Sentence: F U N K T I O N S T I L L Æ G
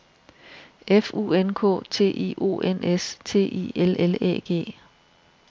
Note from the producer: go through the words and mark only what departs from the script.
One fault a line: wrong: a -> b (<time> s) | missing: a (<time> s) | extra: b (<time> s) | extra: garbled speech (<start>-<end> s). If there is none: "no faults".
no faults